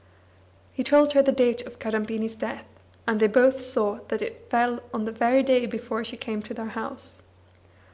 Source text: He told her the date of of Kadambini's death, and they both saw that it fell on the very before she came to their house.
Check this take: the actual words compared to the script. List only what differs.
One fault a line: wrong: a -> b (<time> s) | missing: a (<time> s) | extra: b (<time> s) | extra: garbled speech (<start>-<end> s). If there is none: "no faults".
missing: of (1.8 s)
extra: day (5.4 s)